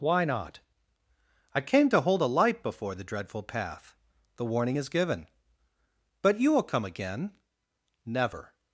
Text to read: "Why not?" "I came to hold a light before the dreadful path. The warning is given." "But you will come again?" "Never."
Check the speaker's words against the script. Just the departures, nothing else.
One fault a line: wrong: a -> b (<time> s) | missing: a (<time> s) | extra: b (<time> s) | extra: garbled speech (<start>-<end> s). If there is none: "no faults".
no faults